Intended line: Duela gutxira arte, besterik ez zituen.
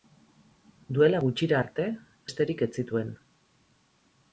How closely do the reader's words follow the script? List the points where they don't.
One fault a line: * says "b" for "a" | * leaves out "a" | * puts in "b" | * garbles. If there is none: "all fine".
all fine